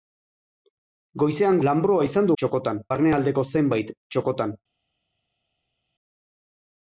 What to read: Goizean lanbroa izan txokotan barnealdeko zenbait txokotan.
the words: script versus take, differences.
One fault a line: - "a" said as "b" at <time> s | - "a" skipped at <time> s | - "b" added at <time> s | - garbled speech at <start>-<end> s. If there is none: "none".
none